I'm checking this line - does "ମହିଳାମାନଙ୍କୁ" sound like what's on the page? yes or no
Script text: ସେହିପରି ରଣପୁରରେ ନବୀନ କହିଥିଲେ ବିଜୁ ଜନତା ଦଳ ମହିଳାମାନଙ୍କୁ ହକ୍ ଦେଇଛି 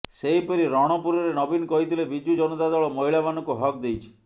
yes